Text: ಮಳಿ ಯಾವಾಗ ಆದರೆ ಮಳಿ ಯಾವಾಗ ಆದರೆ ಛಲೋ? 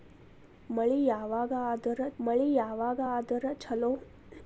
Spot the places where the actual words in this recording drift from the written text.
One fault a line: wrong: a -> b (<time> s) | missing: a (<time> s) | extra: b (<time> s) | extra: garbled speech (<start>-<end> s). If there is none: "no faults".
no faults